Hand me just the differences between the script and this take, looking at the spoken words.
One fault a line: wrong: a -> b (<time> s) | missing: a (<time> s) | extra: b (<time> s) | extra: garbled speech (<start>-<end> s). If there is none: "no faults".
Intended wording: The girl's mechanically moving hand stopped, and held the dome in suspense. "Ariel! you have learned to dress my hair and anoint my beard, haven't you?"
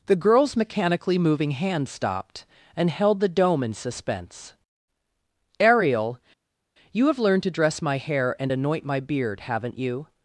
no faults